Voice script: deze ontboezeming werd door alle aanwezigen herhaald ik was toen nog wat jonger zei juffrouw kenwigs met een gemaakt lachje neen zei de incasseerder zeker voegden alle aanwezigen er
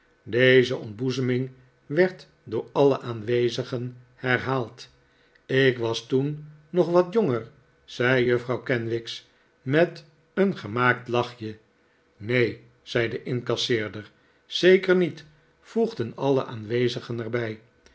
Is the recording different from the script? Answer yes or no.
yes